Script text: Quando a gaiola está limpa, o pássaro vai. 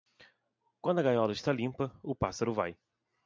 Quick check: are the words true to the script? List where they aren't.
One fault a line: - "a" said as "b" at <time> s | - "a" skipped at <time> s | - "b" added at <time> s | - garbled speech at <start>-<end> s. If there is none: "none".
none